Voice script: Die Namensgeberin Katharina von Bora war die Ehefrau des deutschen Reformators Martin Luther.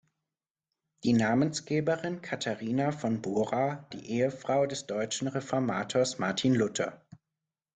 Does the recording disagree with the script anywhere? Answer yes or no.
yes